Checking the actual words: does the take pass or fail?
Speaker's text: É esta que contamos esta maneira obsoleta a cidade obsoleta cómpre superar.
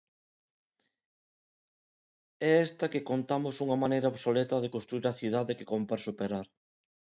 fail